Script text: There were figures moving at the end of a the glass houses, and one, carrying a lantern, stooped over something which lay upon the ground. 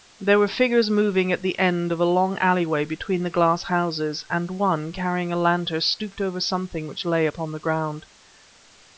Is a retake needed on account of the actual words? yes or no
yes